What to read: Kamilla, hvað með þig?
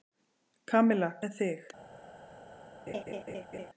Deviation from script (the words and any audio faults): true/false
true